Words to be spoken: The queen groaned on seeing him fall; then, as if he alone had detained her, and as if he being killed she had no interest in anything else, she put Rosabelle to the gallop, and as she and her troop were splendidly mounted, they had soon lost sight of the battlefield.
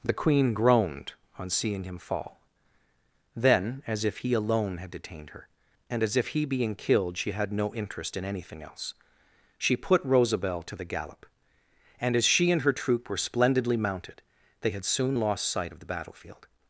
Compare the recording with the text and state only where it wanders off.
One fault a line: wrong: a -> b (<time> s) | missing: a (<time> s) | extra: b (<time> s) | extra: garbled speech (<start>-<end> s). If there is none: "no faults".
no faults